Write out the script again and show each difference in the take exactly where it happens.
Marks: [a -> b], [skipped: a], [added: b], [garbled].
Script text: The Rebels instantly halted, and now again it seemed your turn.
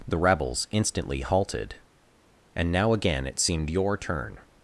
The Rebels instantly halted, and now again it seemed your turn.